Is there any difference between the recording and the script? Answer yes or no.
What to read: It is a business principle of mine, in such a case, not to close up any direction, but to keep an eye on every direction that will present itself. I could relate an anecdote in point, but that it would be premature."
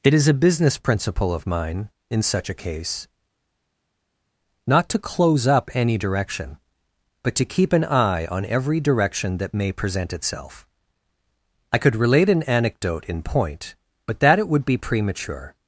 yes